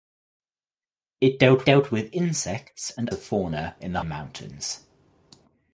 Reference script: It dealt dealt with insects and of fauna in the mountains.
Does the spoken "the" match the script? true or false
true